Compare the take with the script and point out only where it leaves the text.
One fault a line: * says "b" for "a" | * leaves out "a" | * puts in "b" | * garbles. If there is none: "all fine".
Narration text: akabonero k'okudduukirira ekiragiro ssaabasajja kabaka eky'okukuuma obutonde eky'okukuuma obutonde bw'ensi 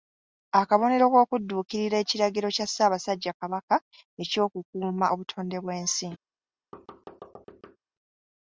* puts in "kya"
* leaves out "eky'okukuuma obutonde"